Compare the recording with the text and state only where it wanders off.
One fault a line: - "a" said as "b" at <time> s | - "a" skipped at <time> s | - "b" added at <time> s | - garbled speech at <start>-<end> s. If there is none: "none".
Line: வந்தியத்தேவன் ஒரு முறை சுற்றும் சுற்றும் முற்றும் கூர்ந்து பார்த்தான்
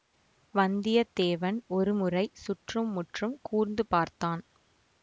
- "சுற்றும்" skipped at 2.9 s